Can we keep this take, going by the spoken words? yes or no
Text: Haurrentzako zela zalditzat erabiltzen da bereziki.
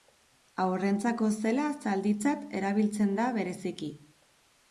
yes